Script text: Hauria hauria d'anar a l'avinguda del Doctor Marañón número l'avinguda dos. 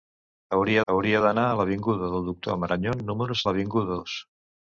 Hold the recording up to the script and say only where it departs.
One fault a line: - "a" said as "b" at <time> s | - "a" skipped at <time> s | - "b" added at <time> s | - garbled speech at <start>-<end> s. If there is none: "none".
none